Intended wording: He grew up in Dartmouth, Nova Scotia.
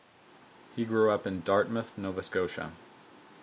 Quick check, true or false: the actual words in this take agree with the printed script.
true